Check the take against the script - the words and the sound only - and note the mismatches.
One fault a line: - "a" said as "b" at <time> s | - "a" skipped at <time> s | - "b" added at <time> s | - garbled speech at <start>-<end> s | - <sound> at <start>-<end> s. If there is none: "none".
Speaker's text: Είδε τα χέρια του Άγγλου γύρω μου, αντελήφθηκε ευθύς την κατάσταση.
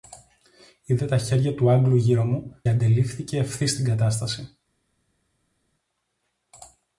none